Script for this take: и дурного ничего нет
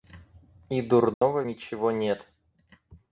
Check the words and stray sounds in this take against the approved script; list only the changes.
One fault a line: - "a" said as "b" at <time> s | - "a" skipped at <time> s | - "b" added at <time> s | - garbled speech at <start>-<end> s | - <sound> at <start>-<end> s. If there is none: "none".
- dropout at 1.1-1.2 s